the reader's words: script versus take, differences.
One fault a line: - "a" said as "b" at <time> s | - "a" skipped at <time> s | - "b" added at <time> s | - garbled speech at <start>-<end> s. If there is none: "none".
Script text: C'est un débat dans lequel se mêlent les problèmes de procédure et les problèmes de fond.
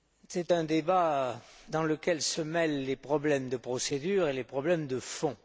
none